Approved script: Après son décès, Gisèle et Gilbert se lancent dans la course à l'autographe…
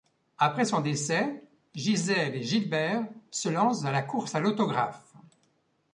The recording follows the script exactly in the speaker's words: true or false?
true